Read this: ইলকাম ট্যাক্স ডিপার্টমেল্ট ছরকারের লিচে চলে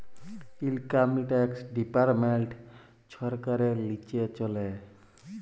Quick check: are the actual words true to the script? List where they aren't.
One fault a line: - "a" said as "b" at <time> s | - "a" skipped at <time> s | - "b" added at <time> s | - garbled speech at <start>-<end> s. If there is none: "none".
none